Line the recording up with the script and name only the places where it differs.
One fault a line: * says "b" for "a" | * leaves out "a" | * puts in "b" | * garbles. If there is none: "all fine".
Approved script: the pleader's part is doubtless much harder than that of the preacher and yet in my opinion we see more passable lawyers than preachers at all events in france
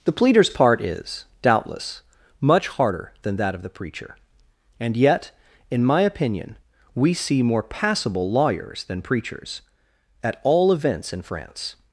all fine